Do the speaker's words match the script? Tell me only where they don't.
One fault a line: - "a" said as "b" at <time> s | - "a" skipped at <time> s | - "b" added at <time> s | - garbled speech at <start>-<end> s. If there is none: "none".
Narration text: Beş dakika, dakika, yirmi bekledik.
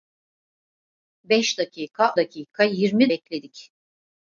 none